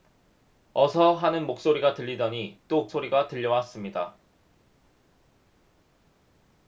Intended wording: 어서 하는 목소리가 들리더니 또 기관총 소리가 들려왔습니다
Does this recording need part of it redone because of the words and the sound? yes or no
yes